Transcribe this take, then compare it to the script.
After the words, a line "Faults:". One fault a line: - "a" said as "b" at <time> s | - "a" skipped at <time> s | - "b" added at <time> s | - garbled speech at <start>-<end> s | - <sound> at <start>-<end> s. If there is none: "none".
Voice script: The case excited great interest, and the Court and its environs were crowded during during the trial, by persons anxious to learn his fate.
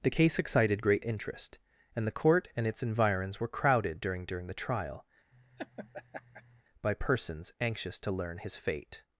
The case excited great interest, and the Court and its environs were crowded during during the trial, by persons anxious to learn his fate.
Faults:
- laugh at 5.3-6.6 s